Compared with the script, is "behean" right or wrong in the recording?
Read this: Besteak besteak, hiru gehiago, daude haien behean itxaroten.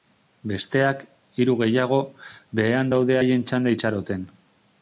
wrong